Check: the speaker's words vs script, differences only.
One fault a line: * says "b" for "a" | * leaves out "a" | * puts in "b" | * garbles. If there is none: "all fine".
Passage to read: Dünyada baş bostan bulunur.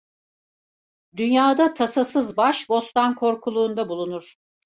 * puts in "tasasız"
* puts in "korkuluğunda"